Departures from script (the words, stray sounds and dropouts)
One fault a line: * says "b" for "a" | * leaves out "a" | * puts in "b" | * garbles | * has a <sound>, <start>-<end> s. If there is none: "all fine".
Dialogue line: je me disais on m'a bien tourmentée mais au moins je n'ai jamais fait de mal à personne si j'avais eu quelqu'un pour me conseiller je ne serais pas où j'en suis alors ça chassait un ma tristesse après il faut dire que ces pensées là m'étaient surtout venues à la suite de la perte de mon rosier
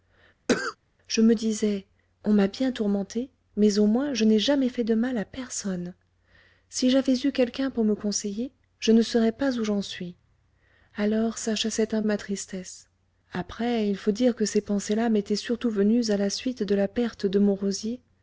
* has a cough, 0.5-0.8 s